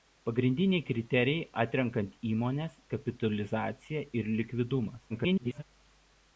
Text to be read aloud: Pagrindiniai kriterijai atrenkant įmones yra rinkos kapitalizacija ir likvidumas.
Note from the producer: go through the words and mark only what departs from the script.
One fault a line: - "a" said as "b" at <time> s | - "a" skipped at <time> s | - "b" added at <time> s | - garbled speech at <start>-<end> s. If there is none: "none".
- "yra rinkos" skipped at 2.8 s
- garbled speech at 5.1-5.6 s